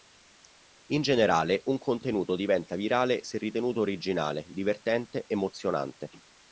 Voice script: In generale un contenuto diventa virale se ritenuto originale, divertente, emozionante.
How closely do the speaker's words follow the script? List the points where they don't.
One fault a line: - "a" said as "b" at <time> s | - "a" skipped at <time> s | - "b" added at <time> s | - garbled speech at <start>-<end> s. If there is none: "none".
none